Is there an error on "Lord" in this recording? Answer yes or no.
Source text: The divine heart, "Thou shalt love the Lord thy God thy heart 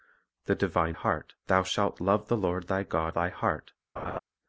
no